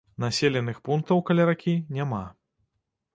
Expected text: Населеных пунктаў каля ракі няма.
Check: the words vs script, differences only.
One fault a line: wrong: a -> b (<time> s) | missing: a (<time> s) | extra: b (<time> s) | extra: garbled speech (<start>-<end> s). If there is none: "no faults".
no faults